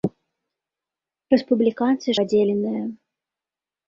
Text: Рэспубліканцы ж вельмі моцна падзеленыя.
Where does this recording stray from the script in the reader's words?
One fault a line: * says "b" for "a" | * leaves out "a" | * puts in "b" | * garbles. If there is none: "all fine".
* leaves out "ж вельмі моцна"